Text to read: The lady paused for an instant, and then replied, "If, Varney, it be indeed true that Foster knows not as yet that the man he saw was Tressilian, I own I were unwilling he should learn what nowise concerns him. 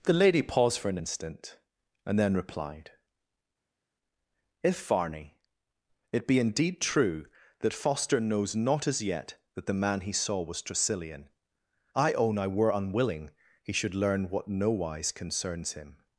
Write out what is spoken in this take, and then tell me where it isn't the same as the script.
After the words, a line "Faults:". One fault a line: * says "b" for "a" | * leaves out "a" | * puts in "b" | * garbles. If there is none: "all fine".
The lady paused for an instant, and then replied, "If, Varney, it be indeed true that Foster knows not as yet that the man he saw was Tressilian, I own I were unwilling he should learn what nowise concerns him.
Faults:
all fine